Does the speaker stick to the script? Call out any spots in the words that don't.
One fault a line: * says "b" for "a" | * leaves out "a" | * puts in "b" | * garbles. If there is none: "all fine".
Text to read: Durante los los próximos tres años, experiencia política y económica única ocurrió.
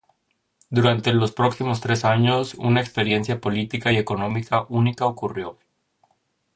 * leaves out "los"
* puts in "una"